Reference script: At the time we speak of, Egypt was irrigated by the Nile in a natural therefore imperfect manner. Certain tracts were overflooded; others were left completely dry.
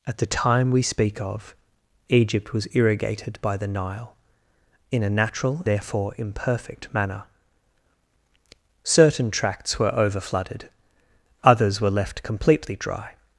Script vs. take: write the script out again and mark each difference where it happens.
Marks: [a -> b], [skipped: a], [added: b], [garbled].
At the time we speak of, Egypt was irrigated by the Nile in a natural therefore imperfect manner. Certain tracts were overflooded; others were left completely dry.